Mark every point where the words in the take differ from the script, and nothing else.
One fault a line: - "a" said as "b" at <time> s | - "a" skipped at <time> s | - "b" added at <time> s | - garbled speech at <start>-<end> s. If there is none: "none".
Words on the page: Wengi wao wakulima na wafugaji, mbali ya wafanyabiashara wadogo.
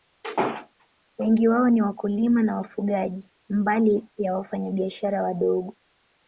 - "ni" added at 1.7 s